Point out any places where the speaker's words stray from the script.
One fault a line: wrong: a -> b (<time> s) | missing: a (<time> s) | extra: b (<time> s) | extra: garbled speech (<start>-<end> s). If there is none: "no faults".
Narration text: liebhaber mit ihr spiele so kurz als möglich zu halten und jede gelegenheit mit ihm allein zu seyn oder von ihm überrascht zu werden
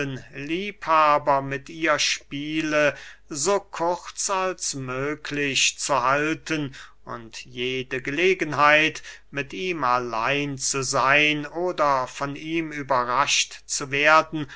no faults